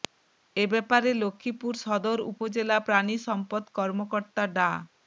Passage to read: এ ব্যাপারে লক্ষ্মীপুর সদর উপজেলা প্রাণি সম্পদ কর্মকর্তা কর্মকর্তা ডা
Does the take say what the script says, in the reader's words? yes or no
no